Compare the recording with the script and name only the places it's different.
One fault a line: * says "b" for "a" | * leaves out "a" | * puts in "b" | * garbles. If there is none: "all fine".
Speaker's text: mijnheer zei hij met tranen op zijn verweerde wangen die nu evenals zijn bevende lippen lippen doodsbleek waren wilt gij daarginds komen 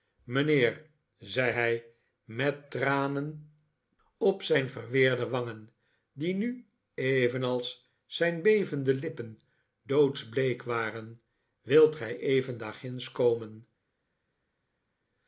* leaves out "lippen"
* puts in "even"